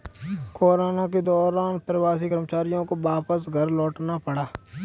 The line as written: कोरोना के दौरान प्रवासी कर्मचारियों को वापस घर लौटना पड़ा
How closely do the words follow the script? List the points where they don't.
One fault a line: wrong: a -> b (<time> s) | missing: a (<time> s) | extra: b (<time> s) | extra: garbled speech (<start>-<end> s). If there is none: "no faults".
no faults